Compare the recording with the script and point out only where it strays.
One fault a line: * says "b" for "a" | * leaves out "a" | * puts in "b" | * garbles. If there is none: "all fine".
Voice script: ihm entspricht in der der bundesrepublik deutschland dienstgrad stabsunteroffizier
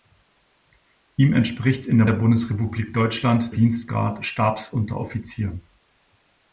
all fine